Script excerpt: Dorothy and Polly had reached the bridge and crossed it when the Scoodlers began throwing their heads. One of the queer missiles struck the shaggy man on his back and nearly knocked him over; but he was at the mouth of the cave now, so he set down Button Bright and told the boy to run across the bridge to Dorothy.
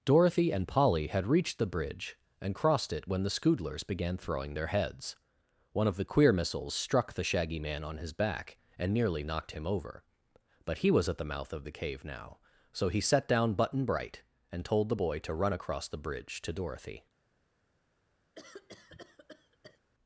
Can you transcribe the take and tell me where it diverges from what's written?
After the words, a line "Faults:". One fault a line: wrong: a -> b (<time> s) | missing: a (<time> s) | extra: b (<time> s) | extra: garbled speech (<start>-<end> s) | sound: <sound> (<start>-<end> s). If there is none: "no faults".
Dorothy and Polly had reached the bridge and crossed it when the Scoodlers began throwing their heads. One of the queer missiles struck the shaggy man on his back and nearly knocked him over; but he was at the mouth of the cave now, so he set down Button Bright and told the boy to run across the bridge to Dorothy.
Faults:
sound: cough (18.3-19.8 s)